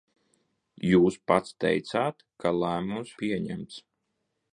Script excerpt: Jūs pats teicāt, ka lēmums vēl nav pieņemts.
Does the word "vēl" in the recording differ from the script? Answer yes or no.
yes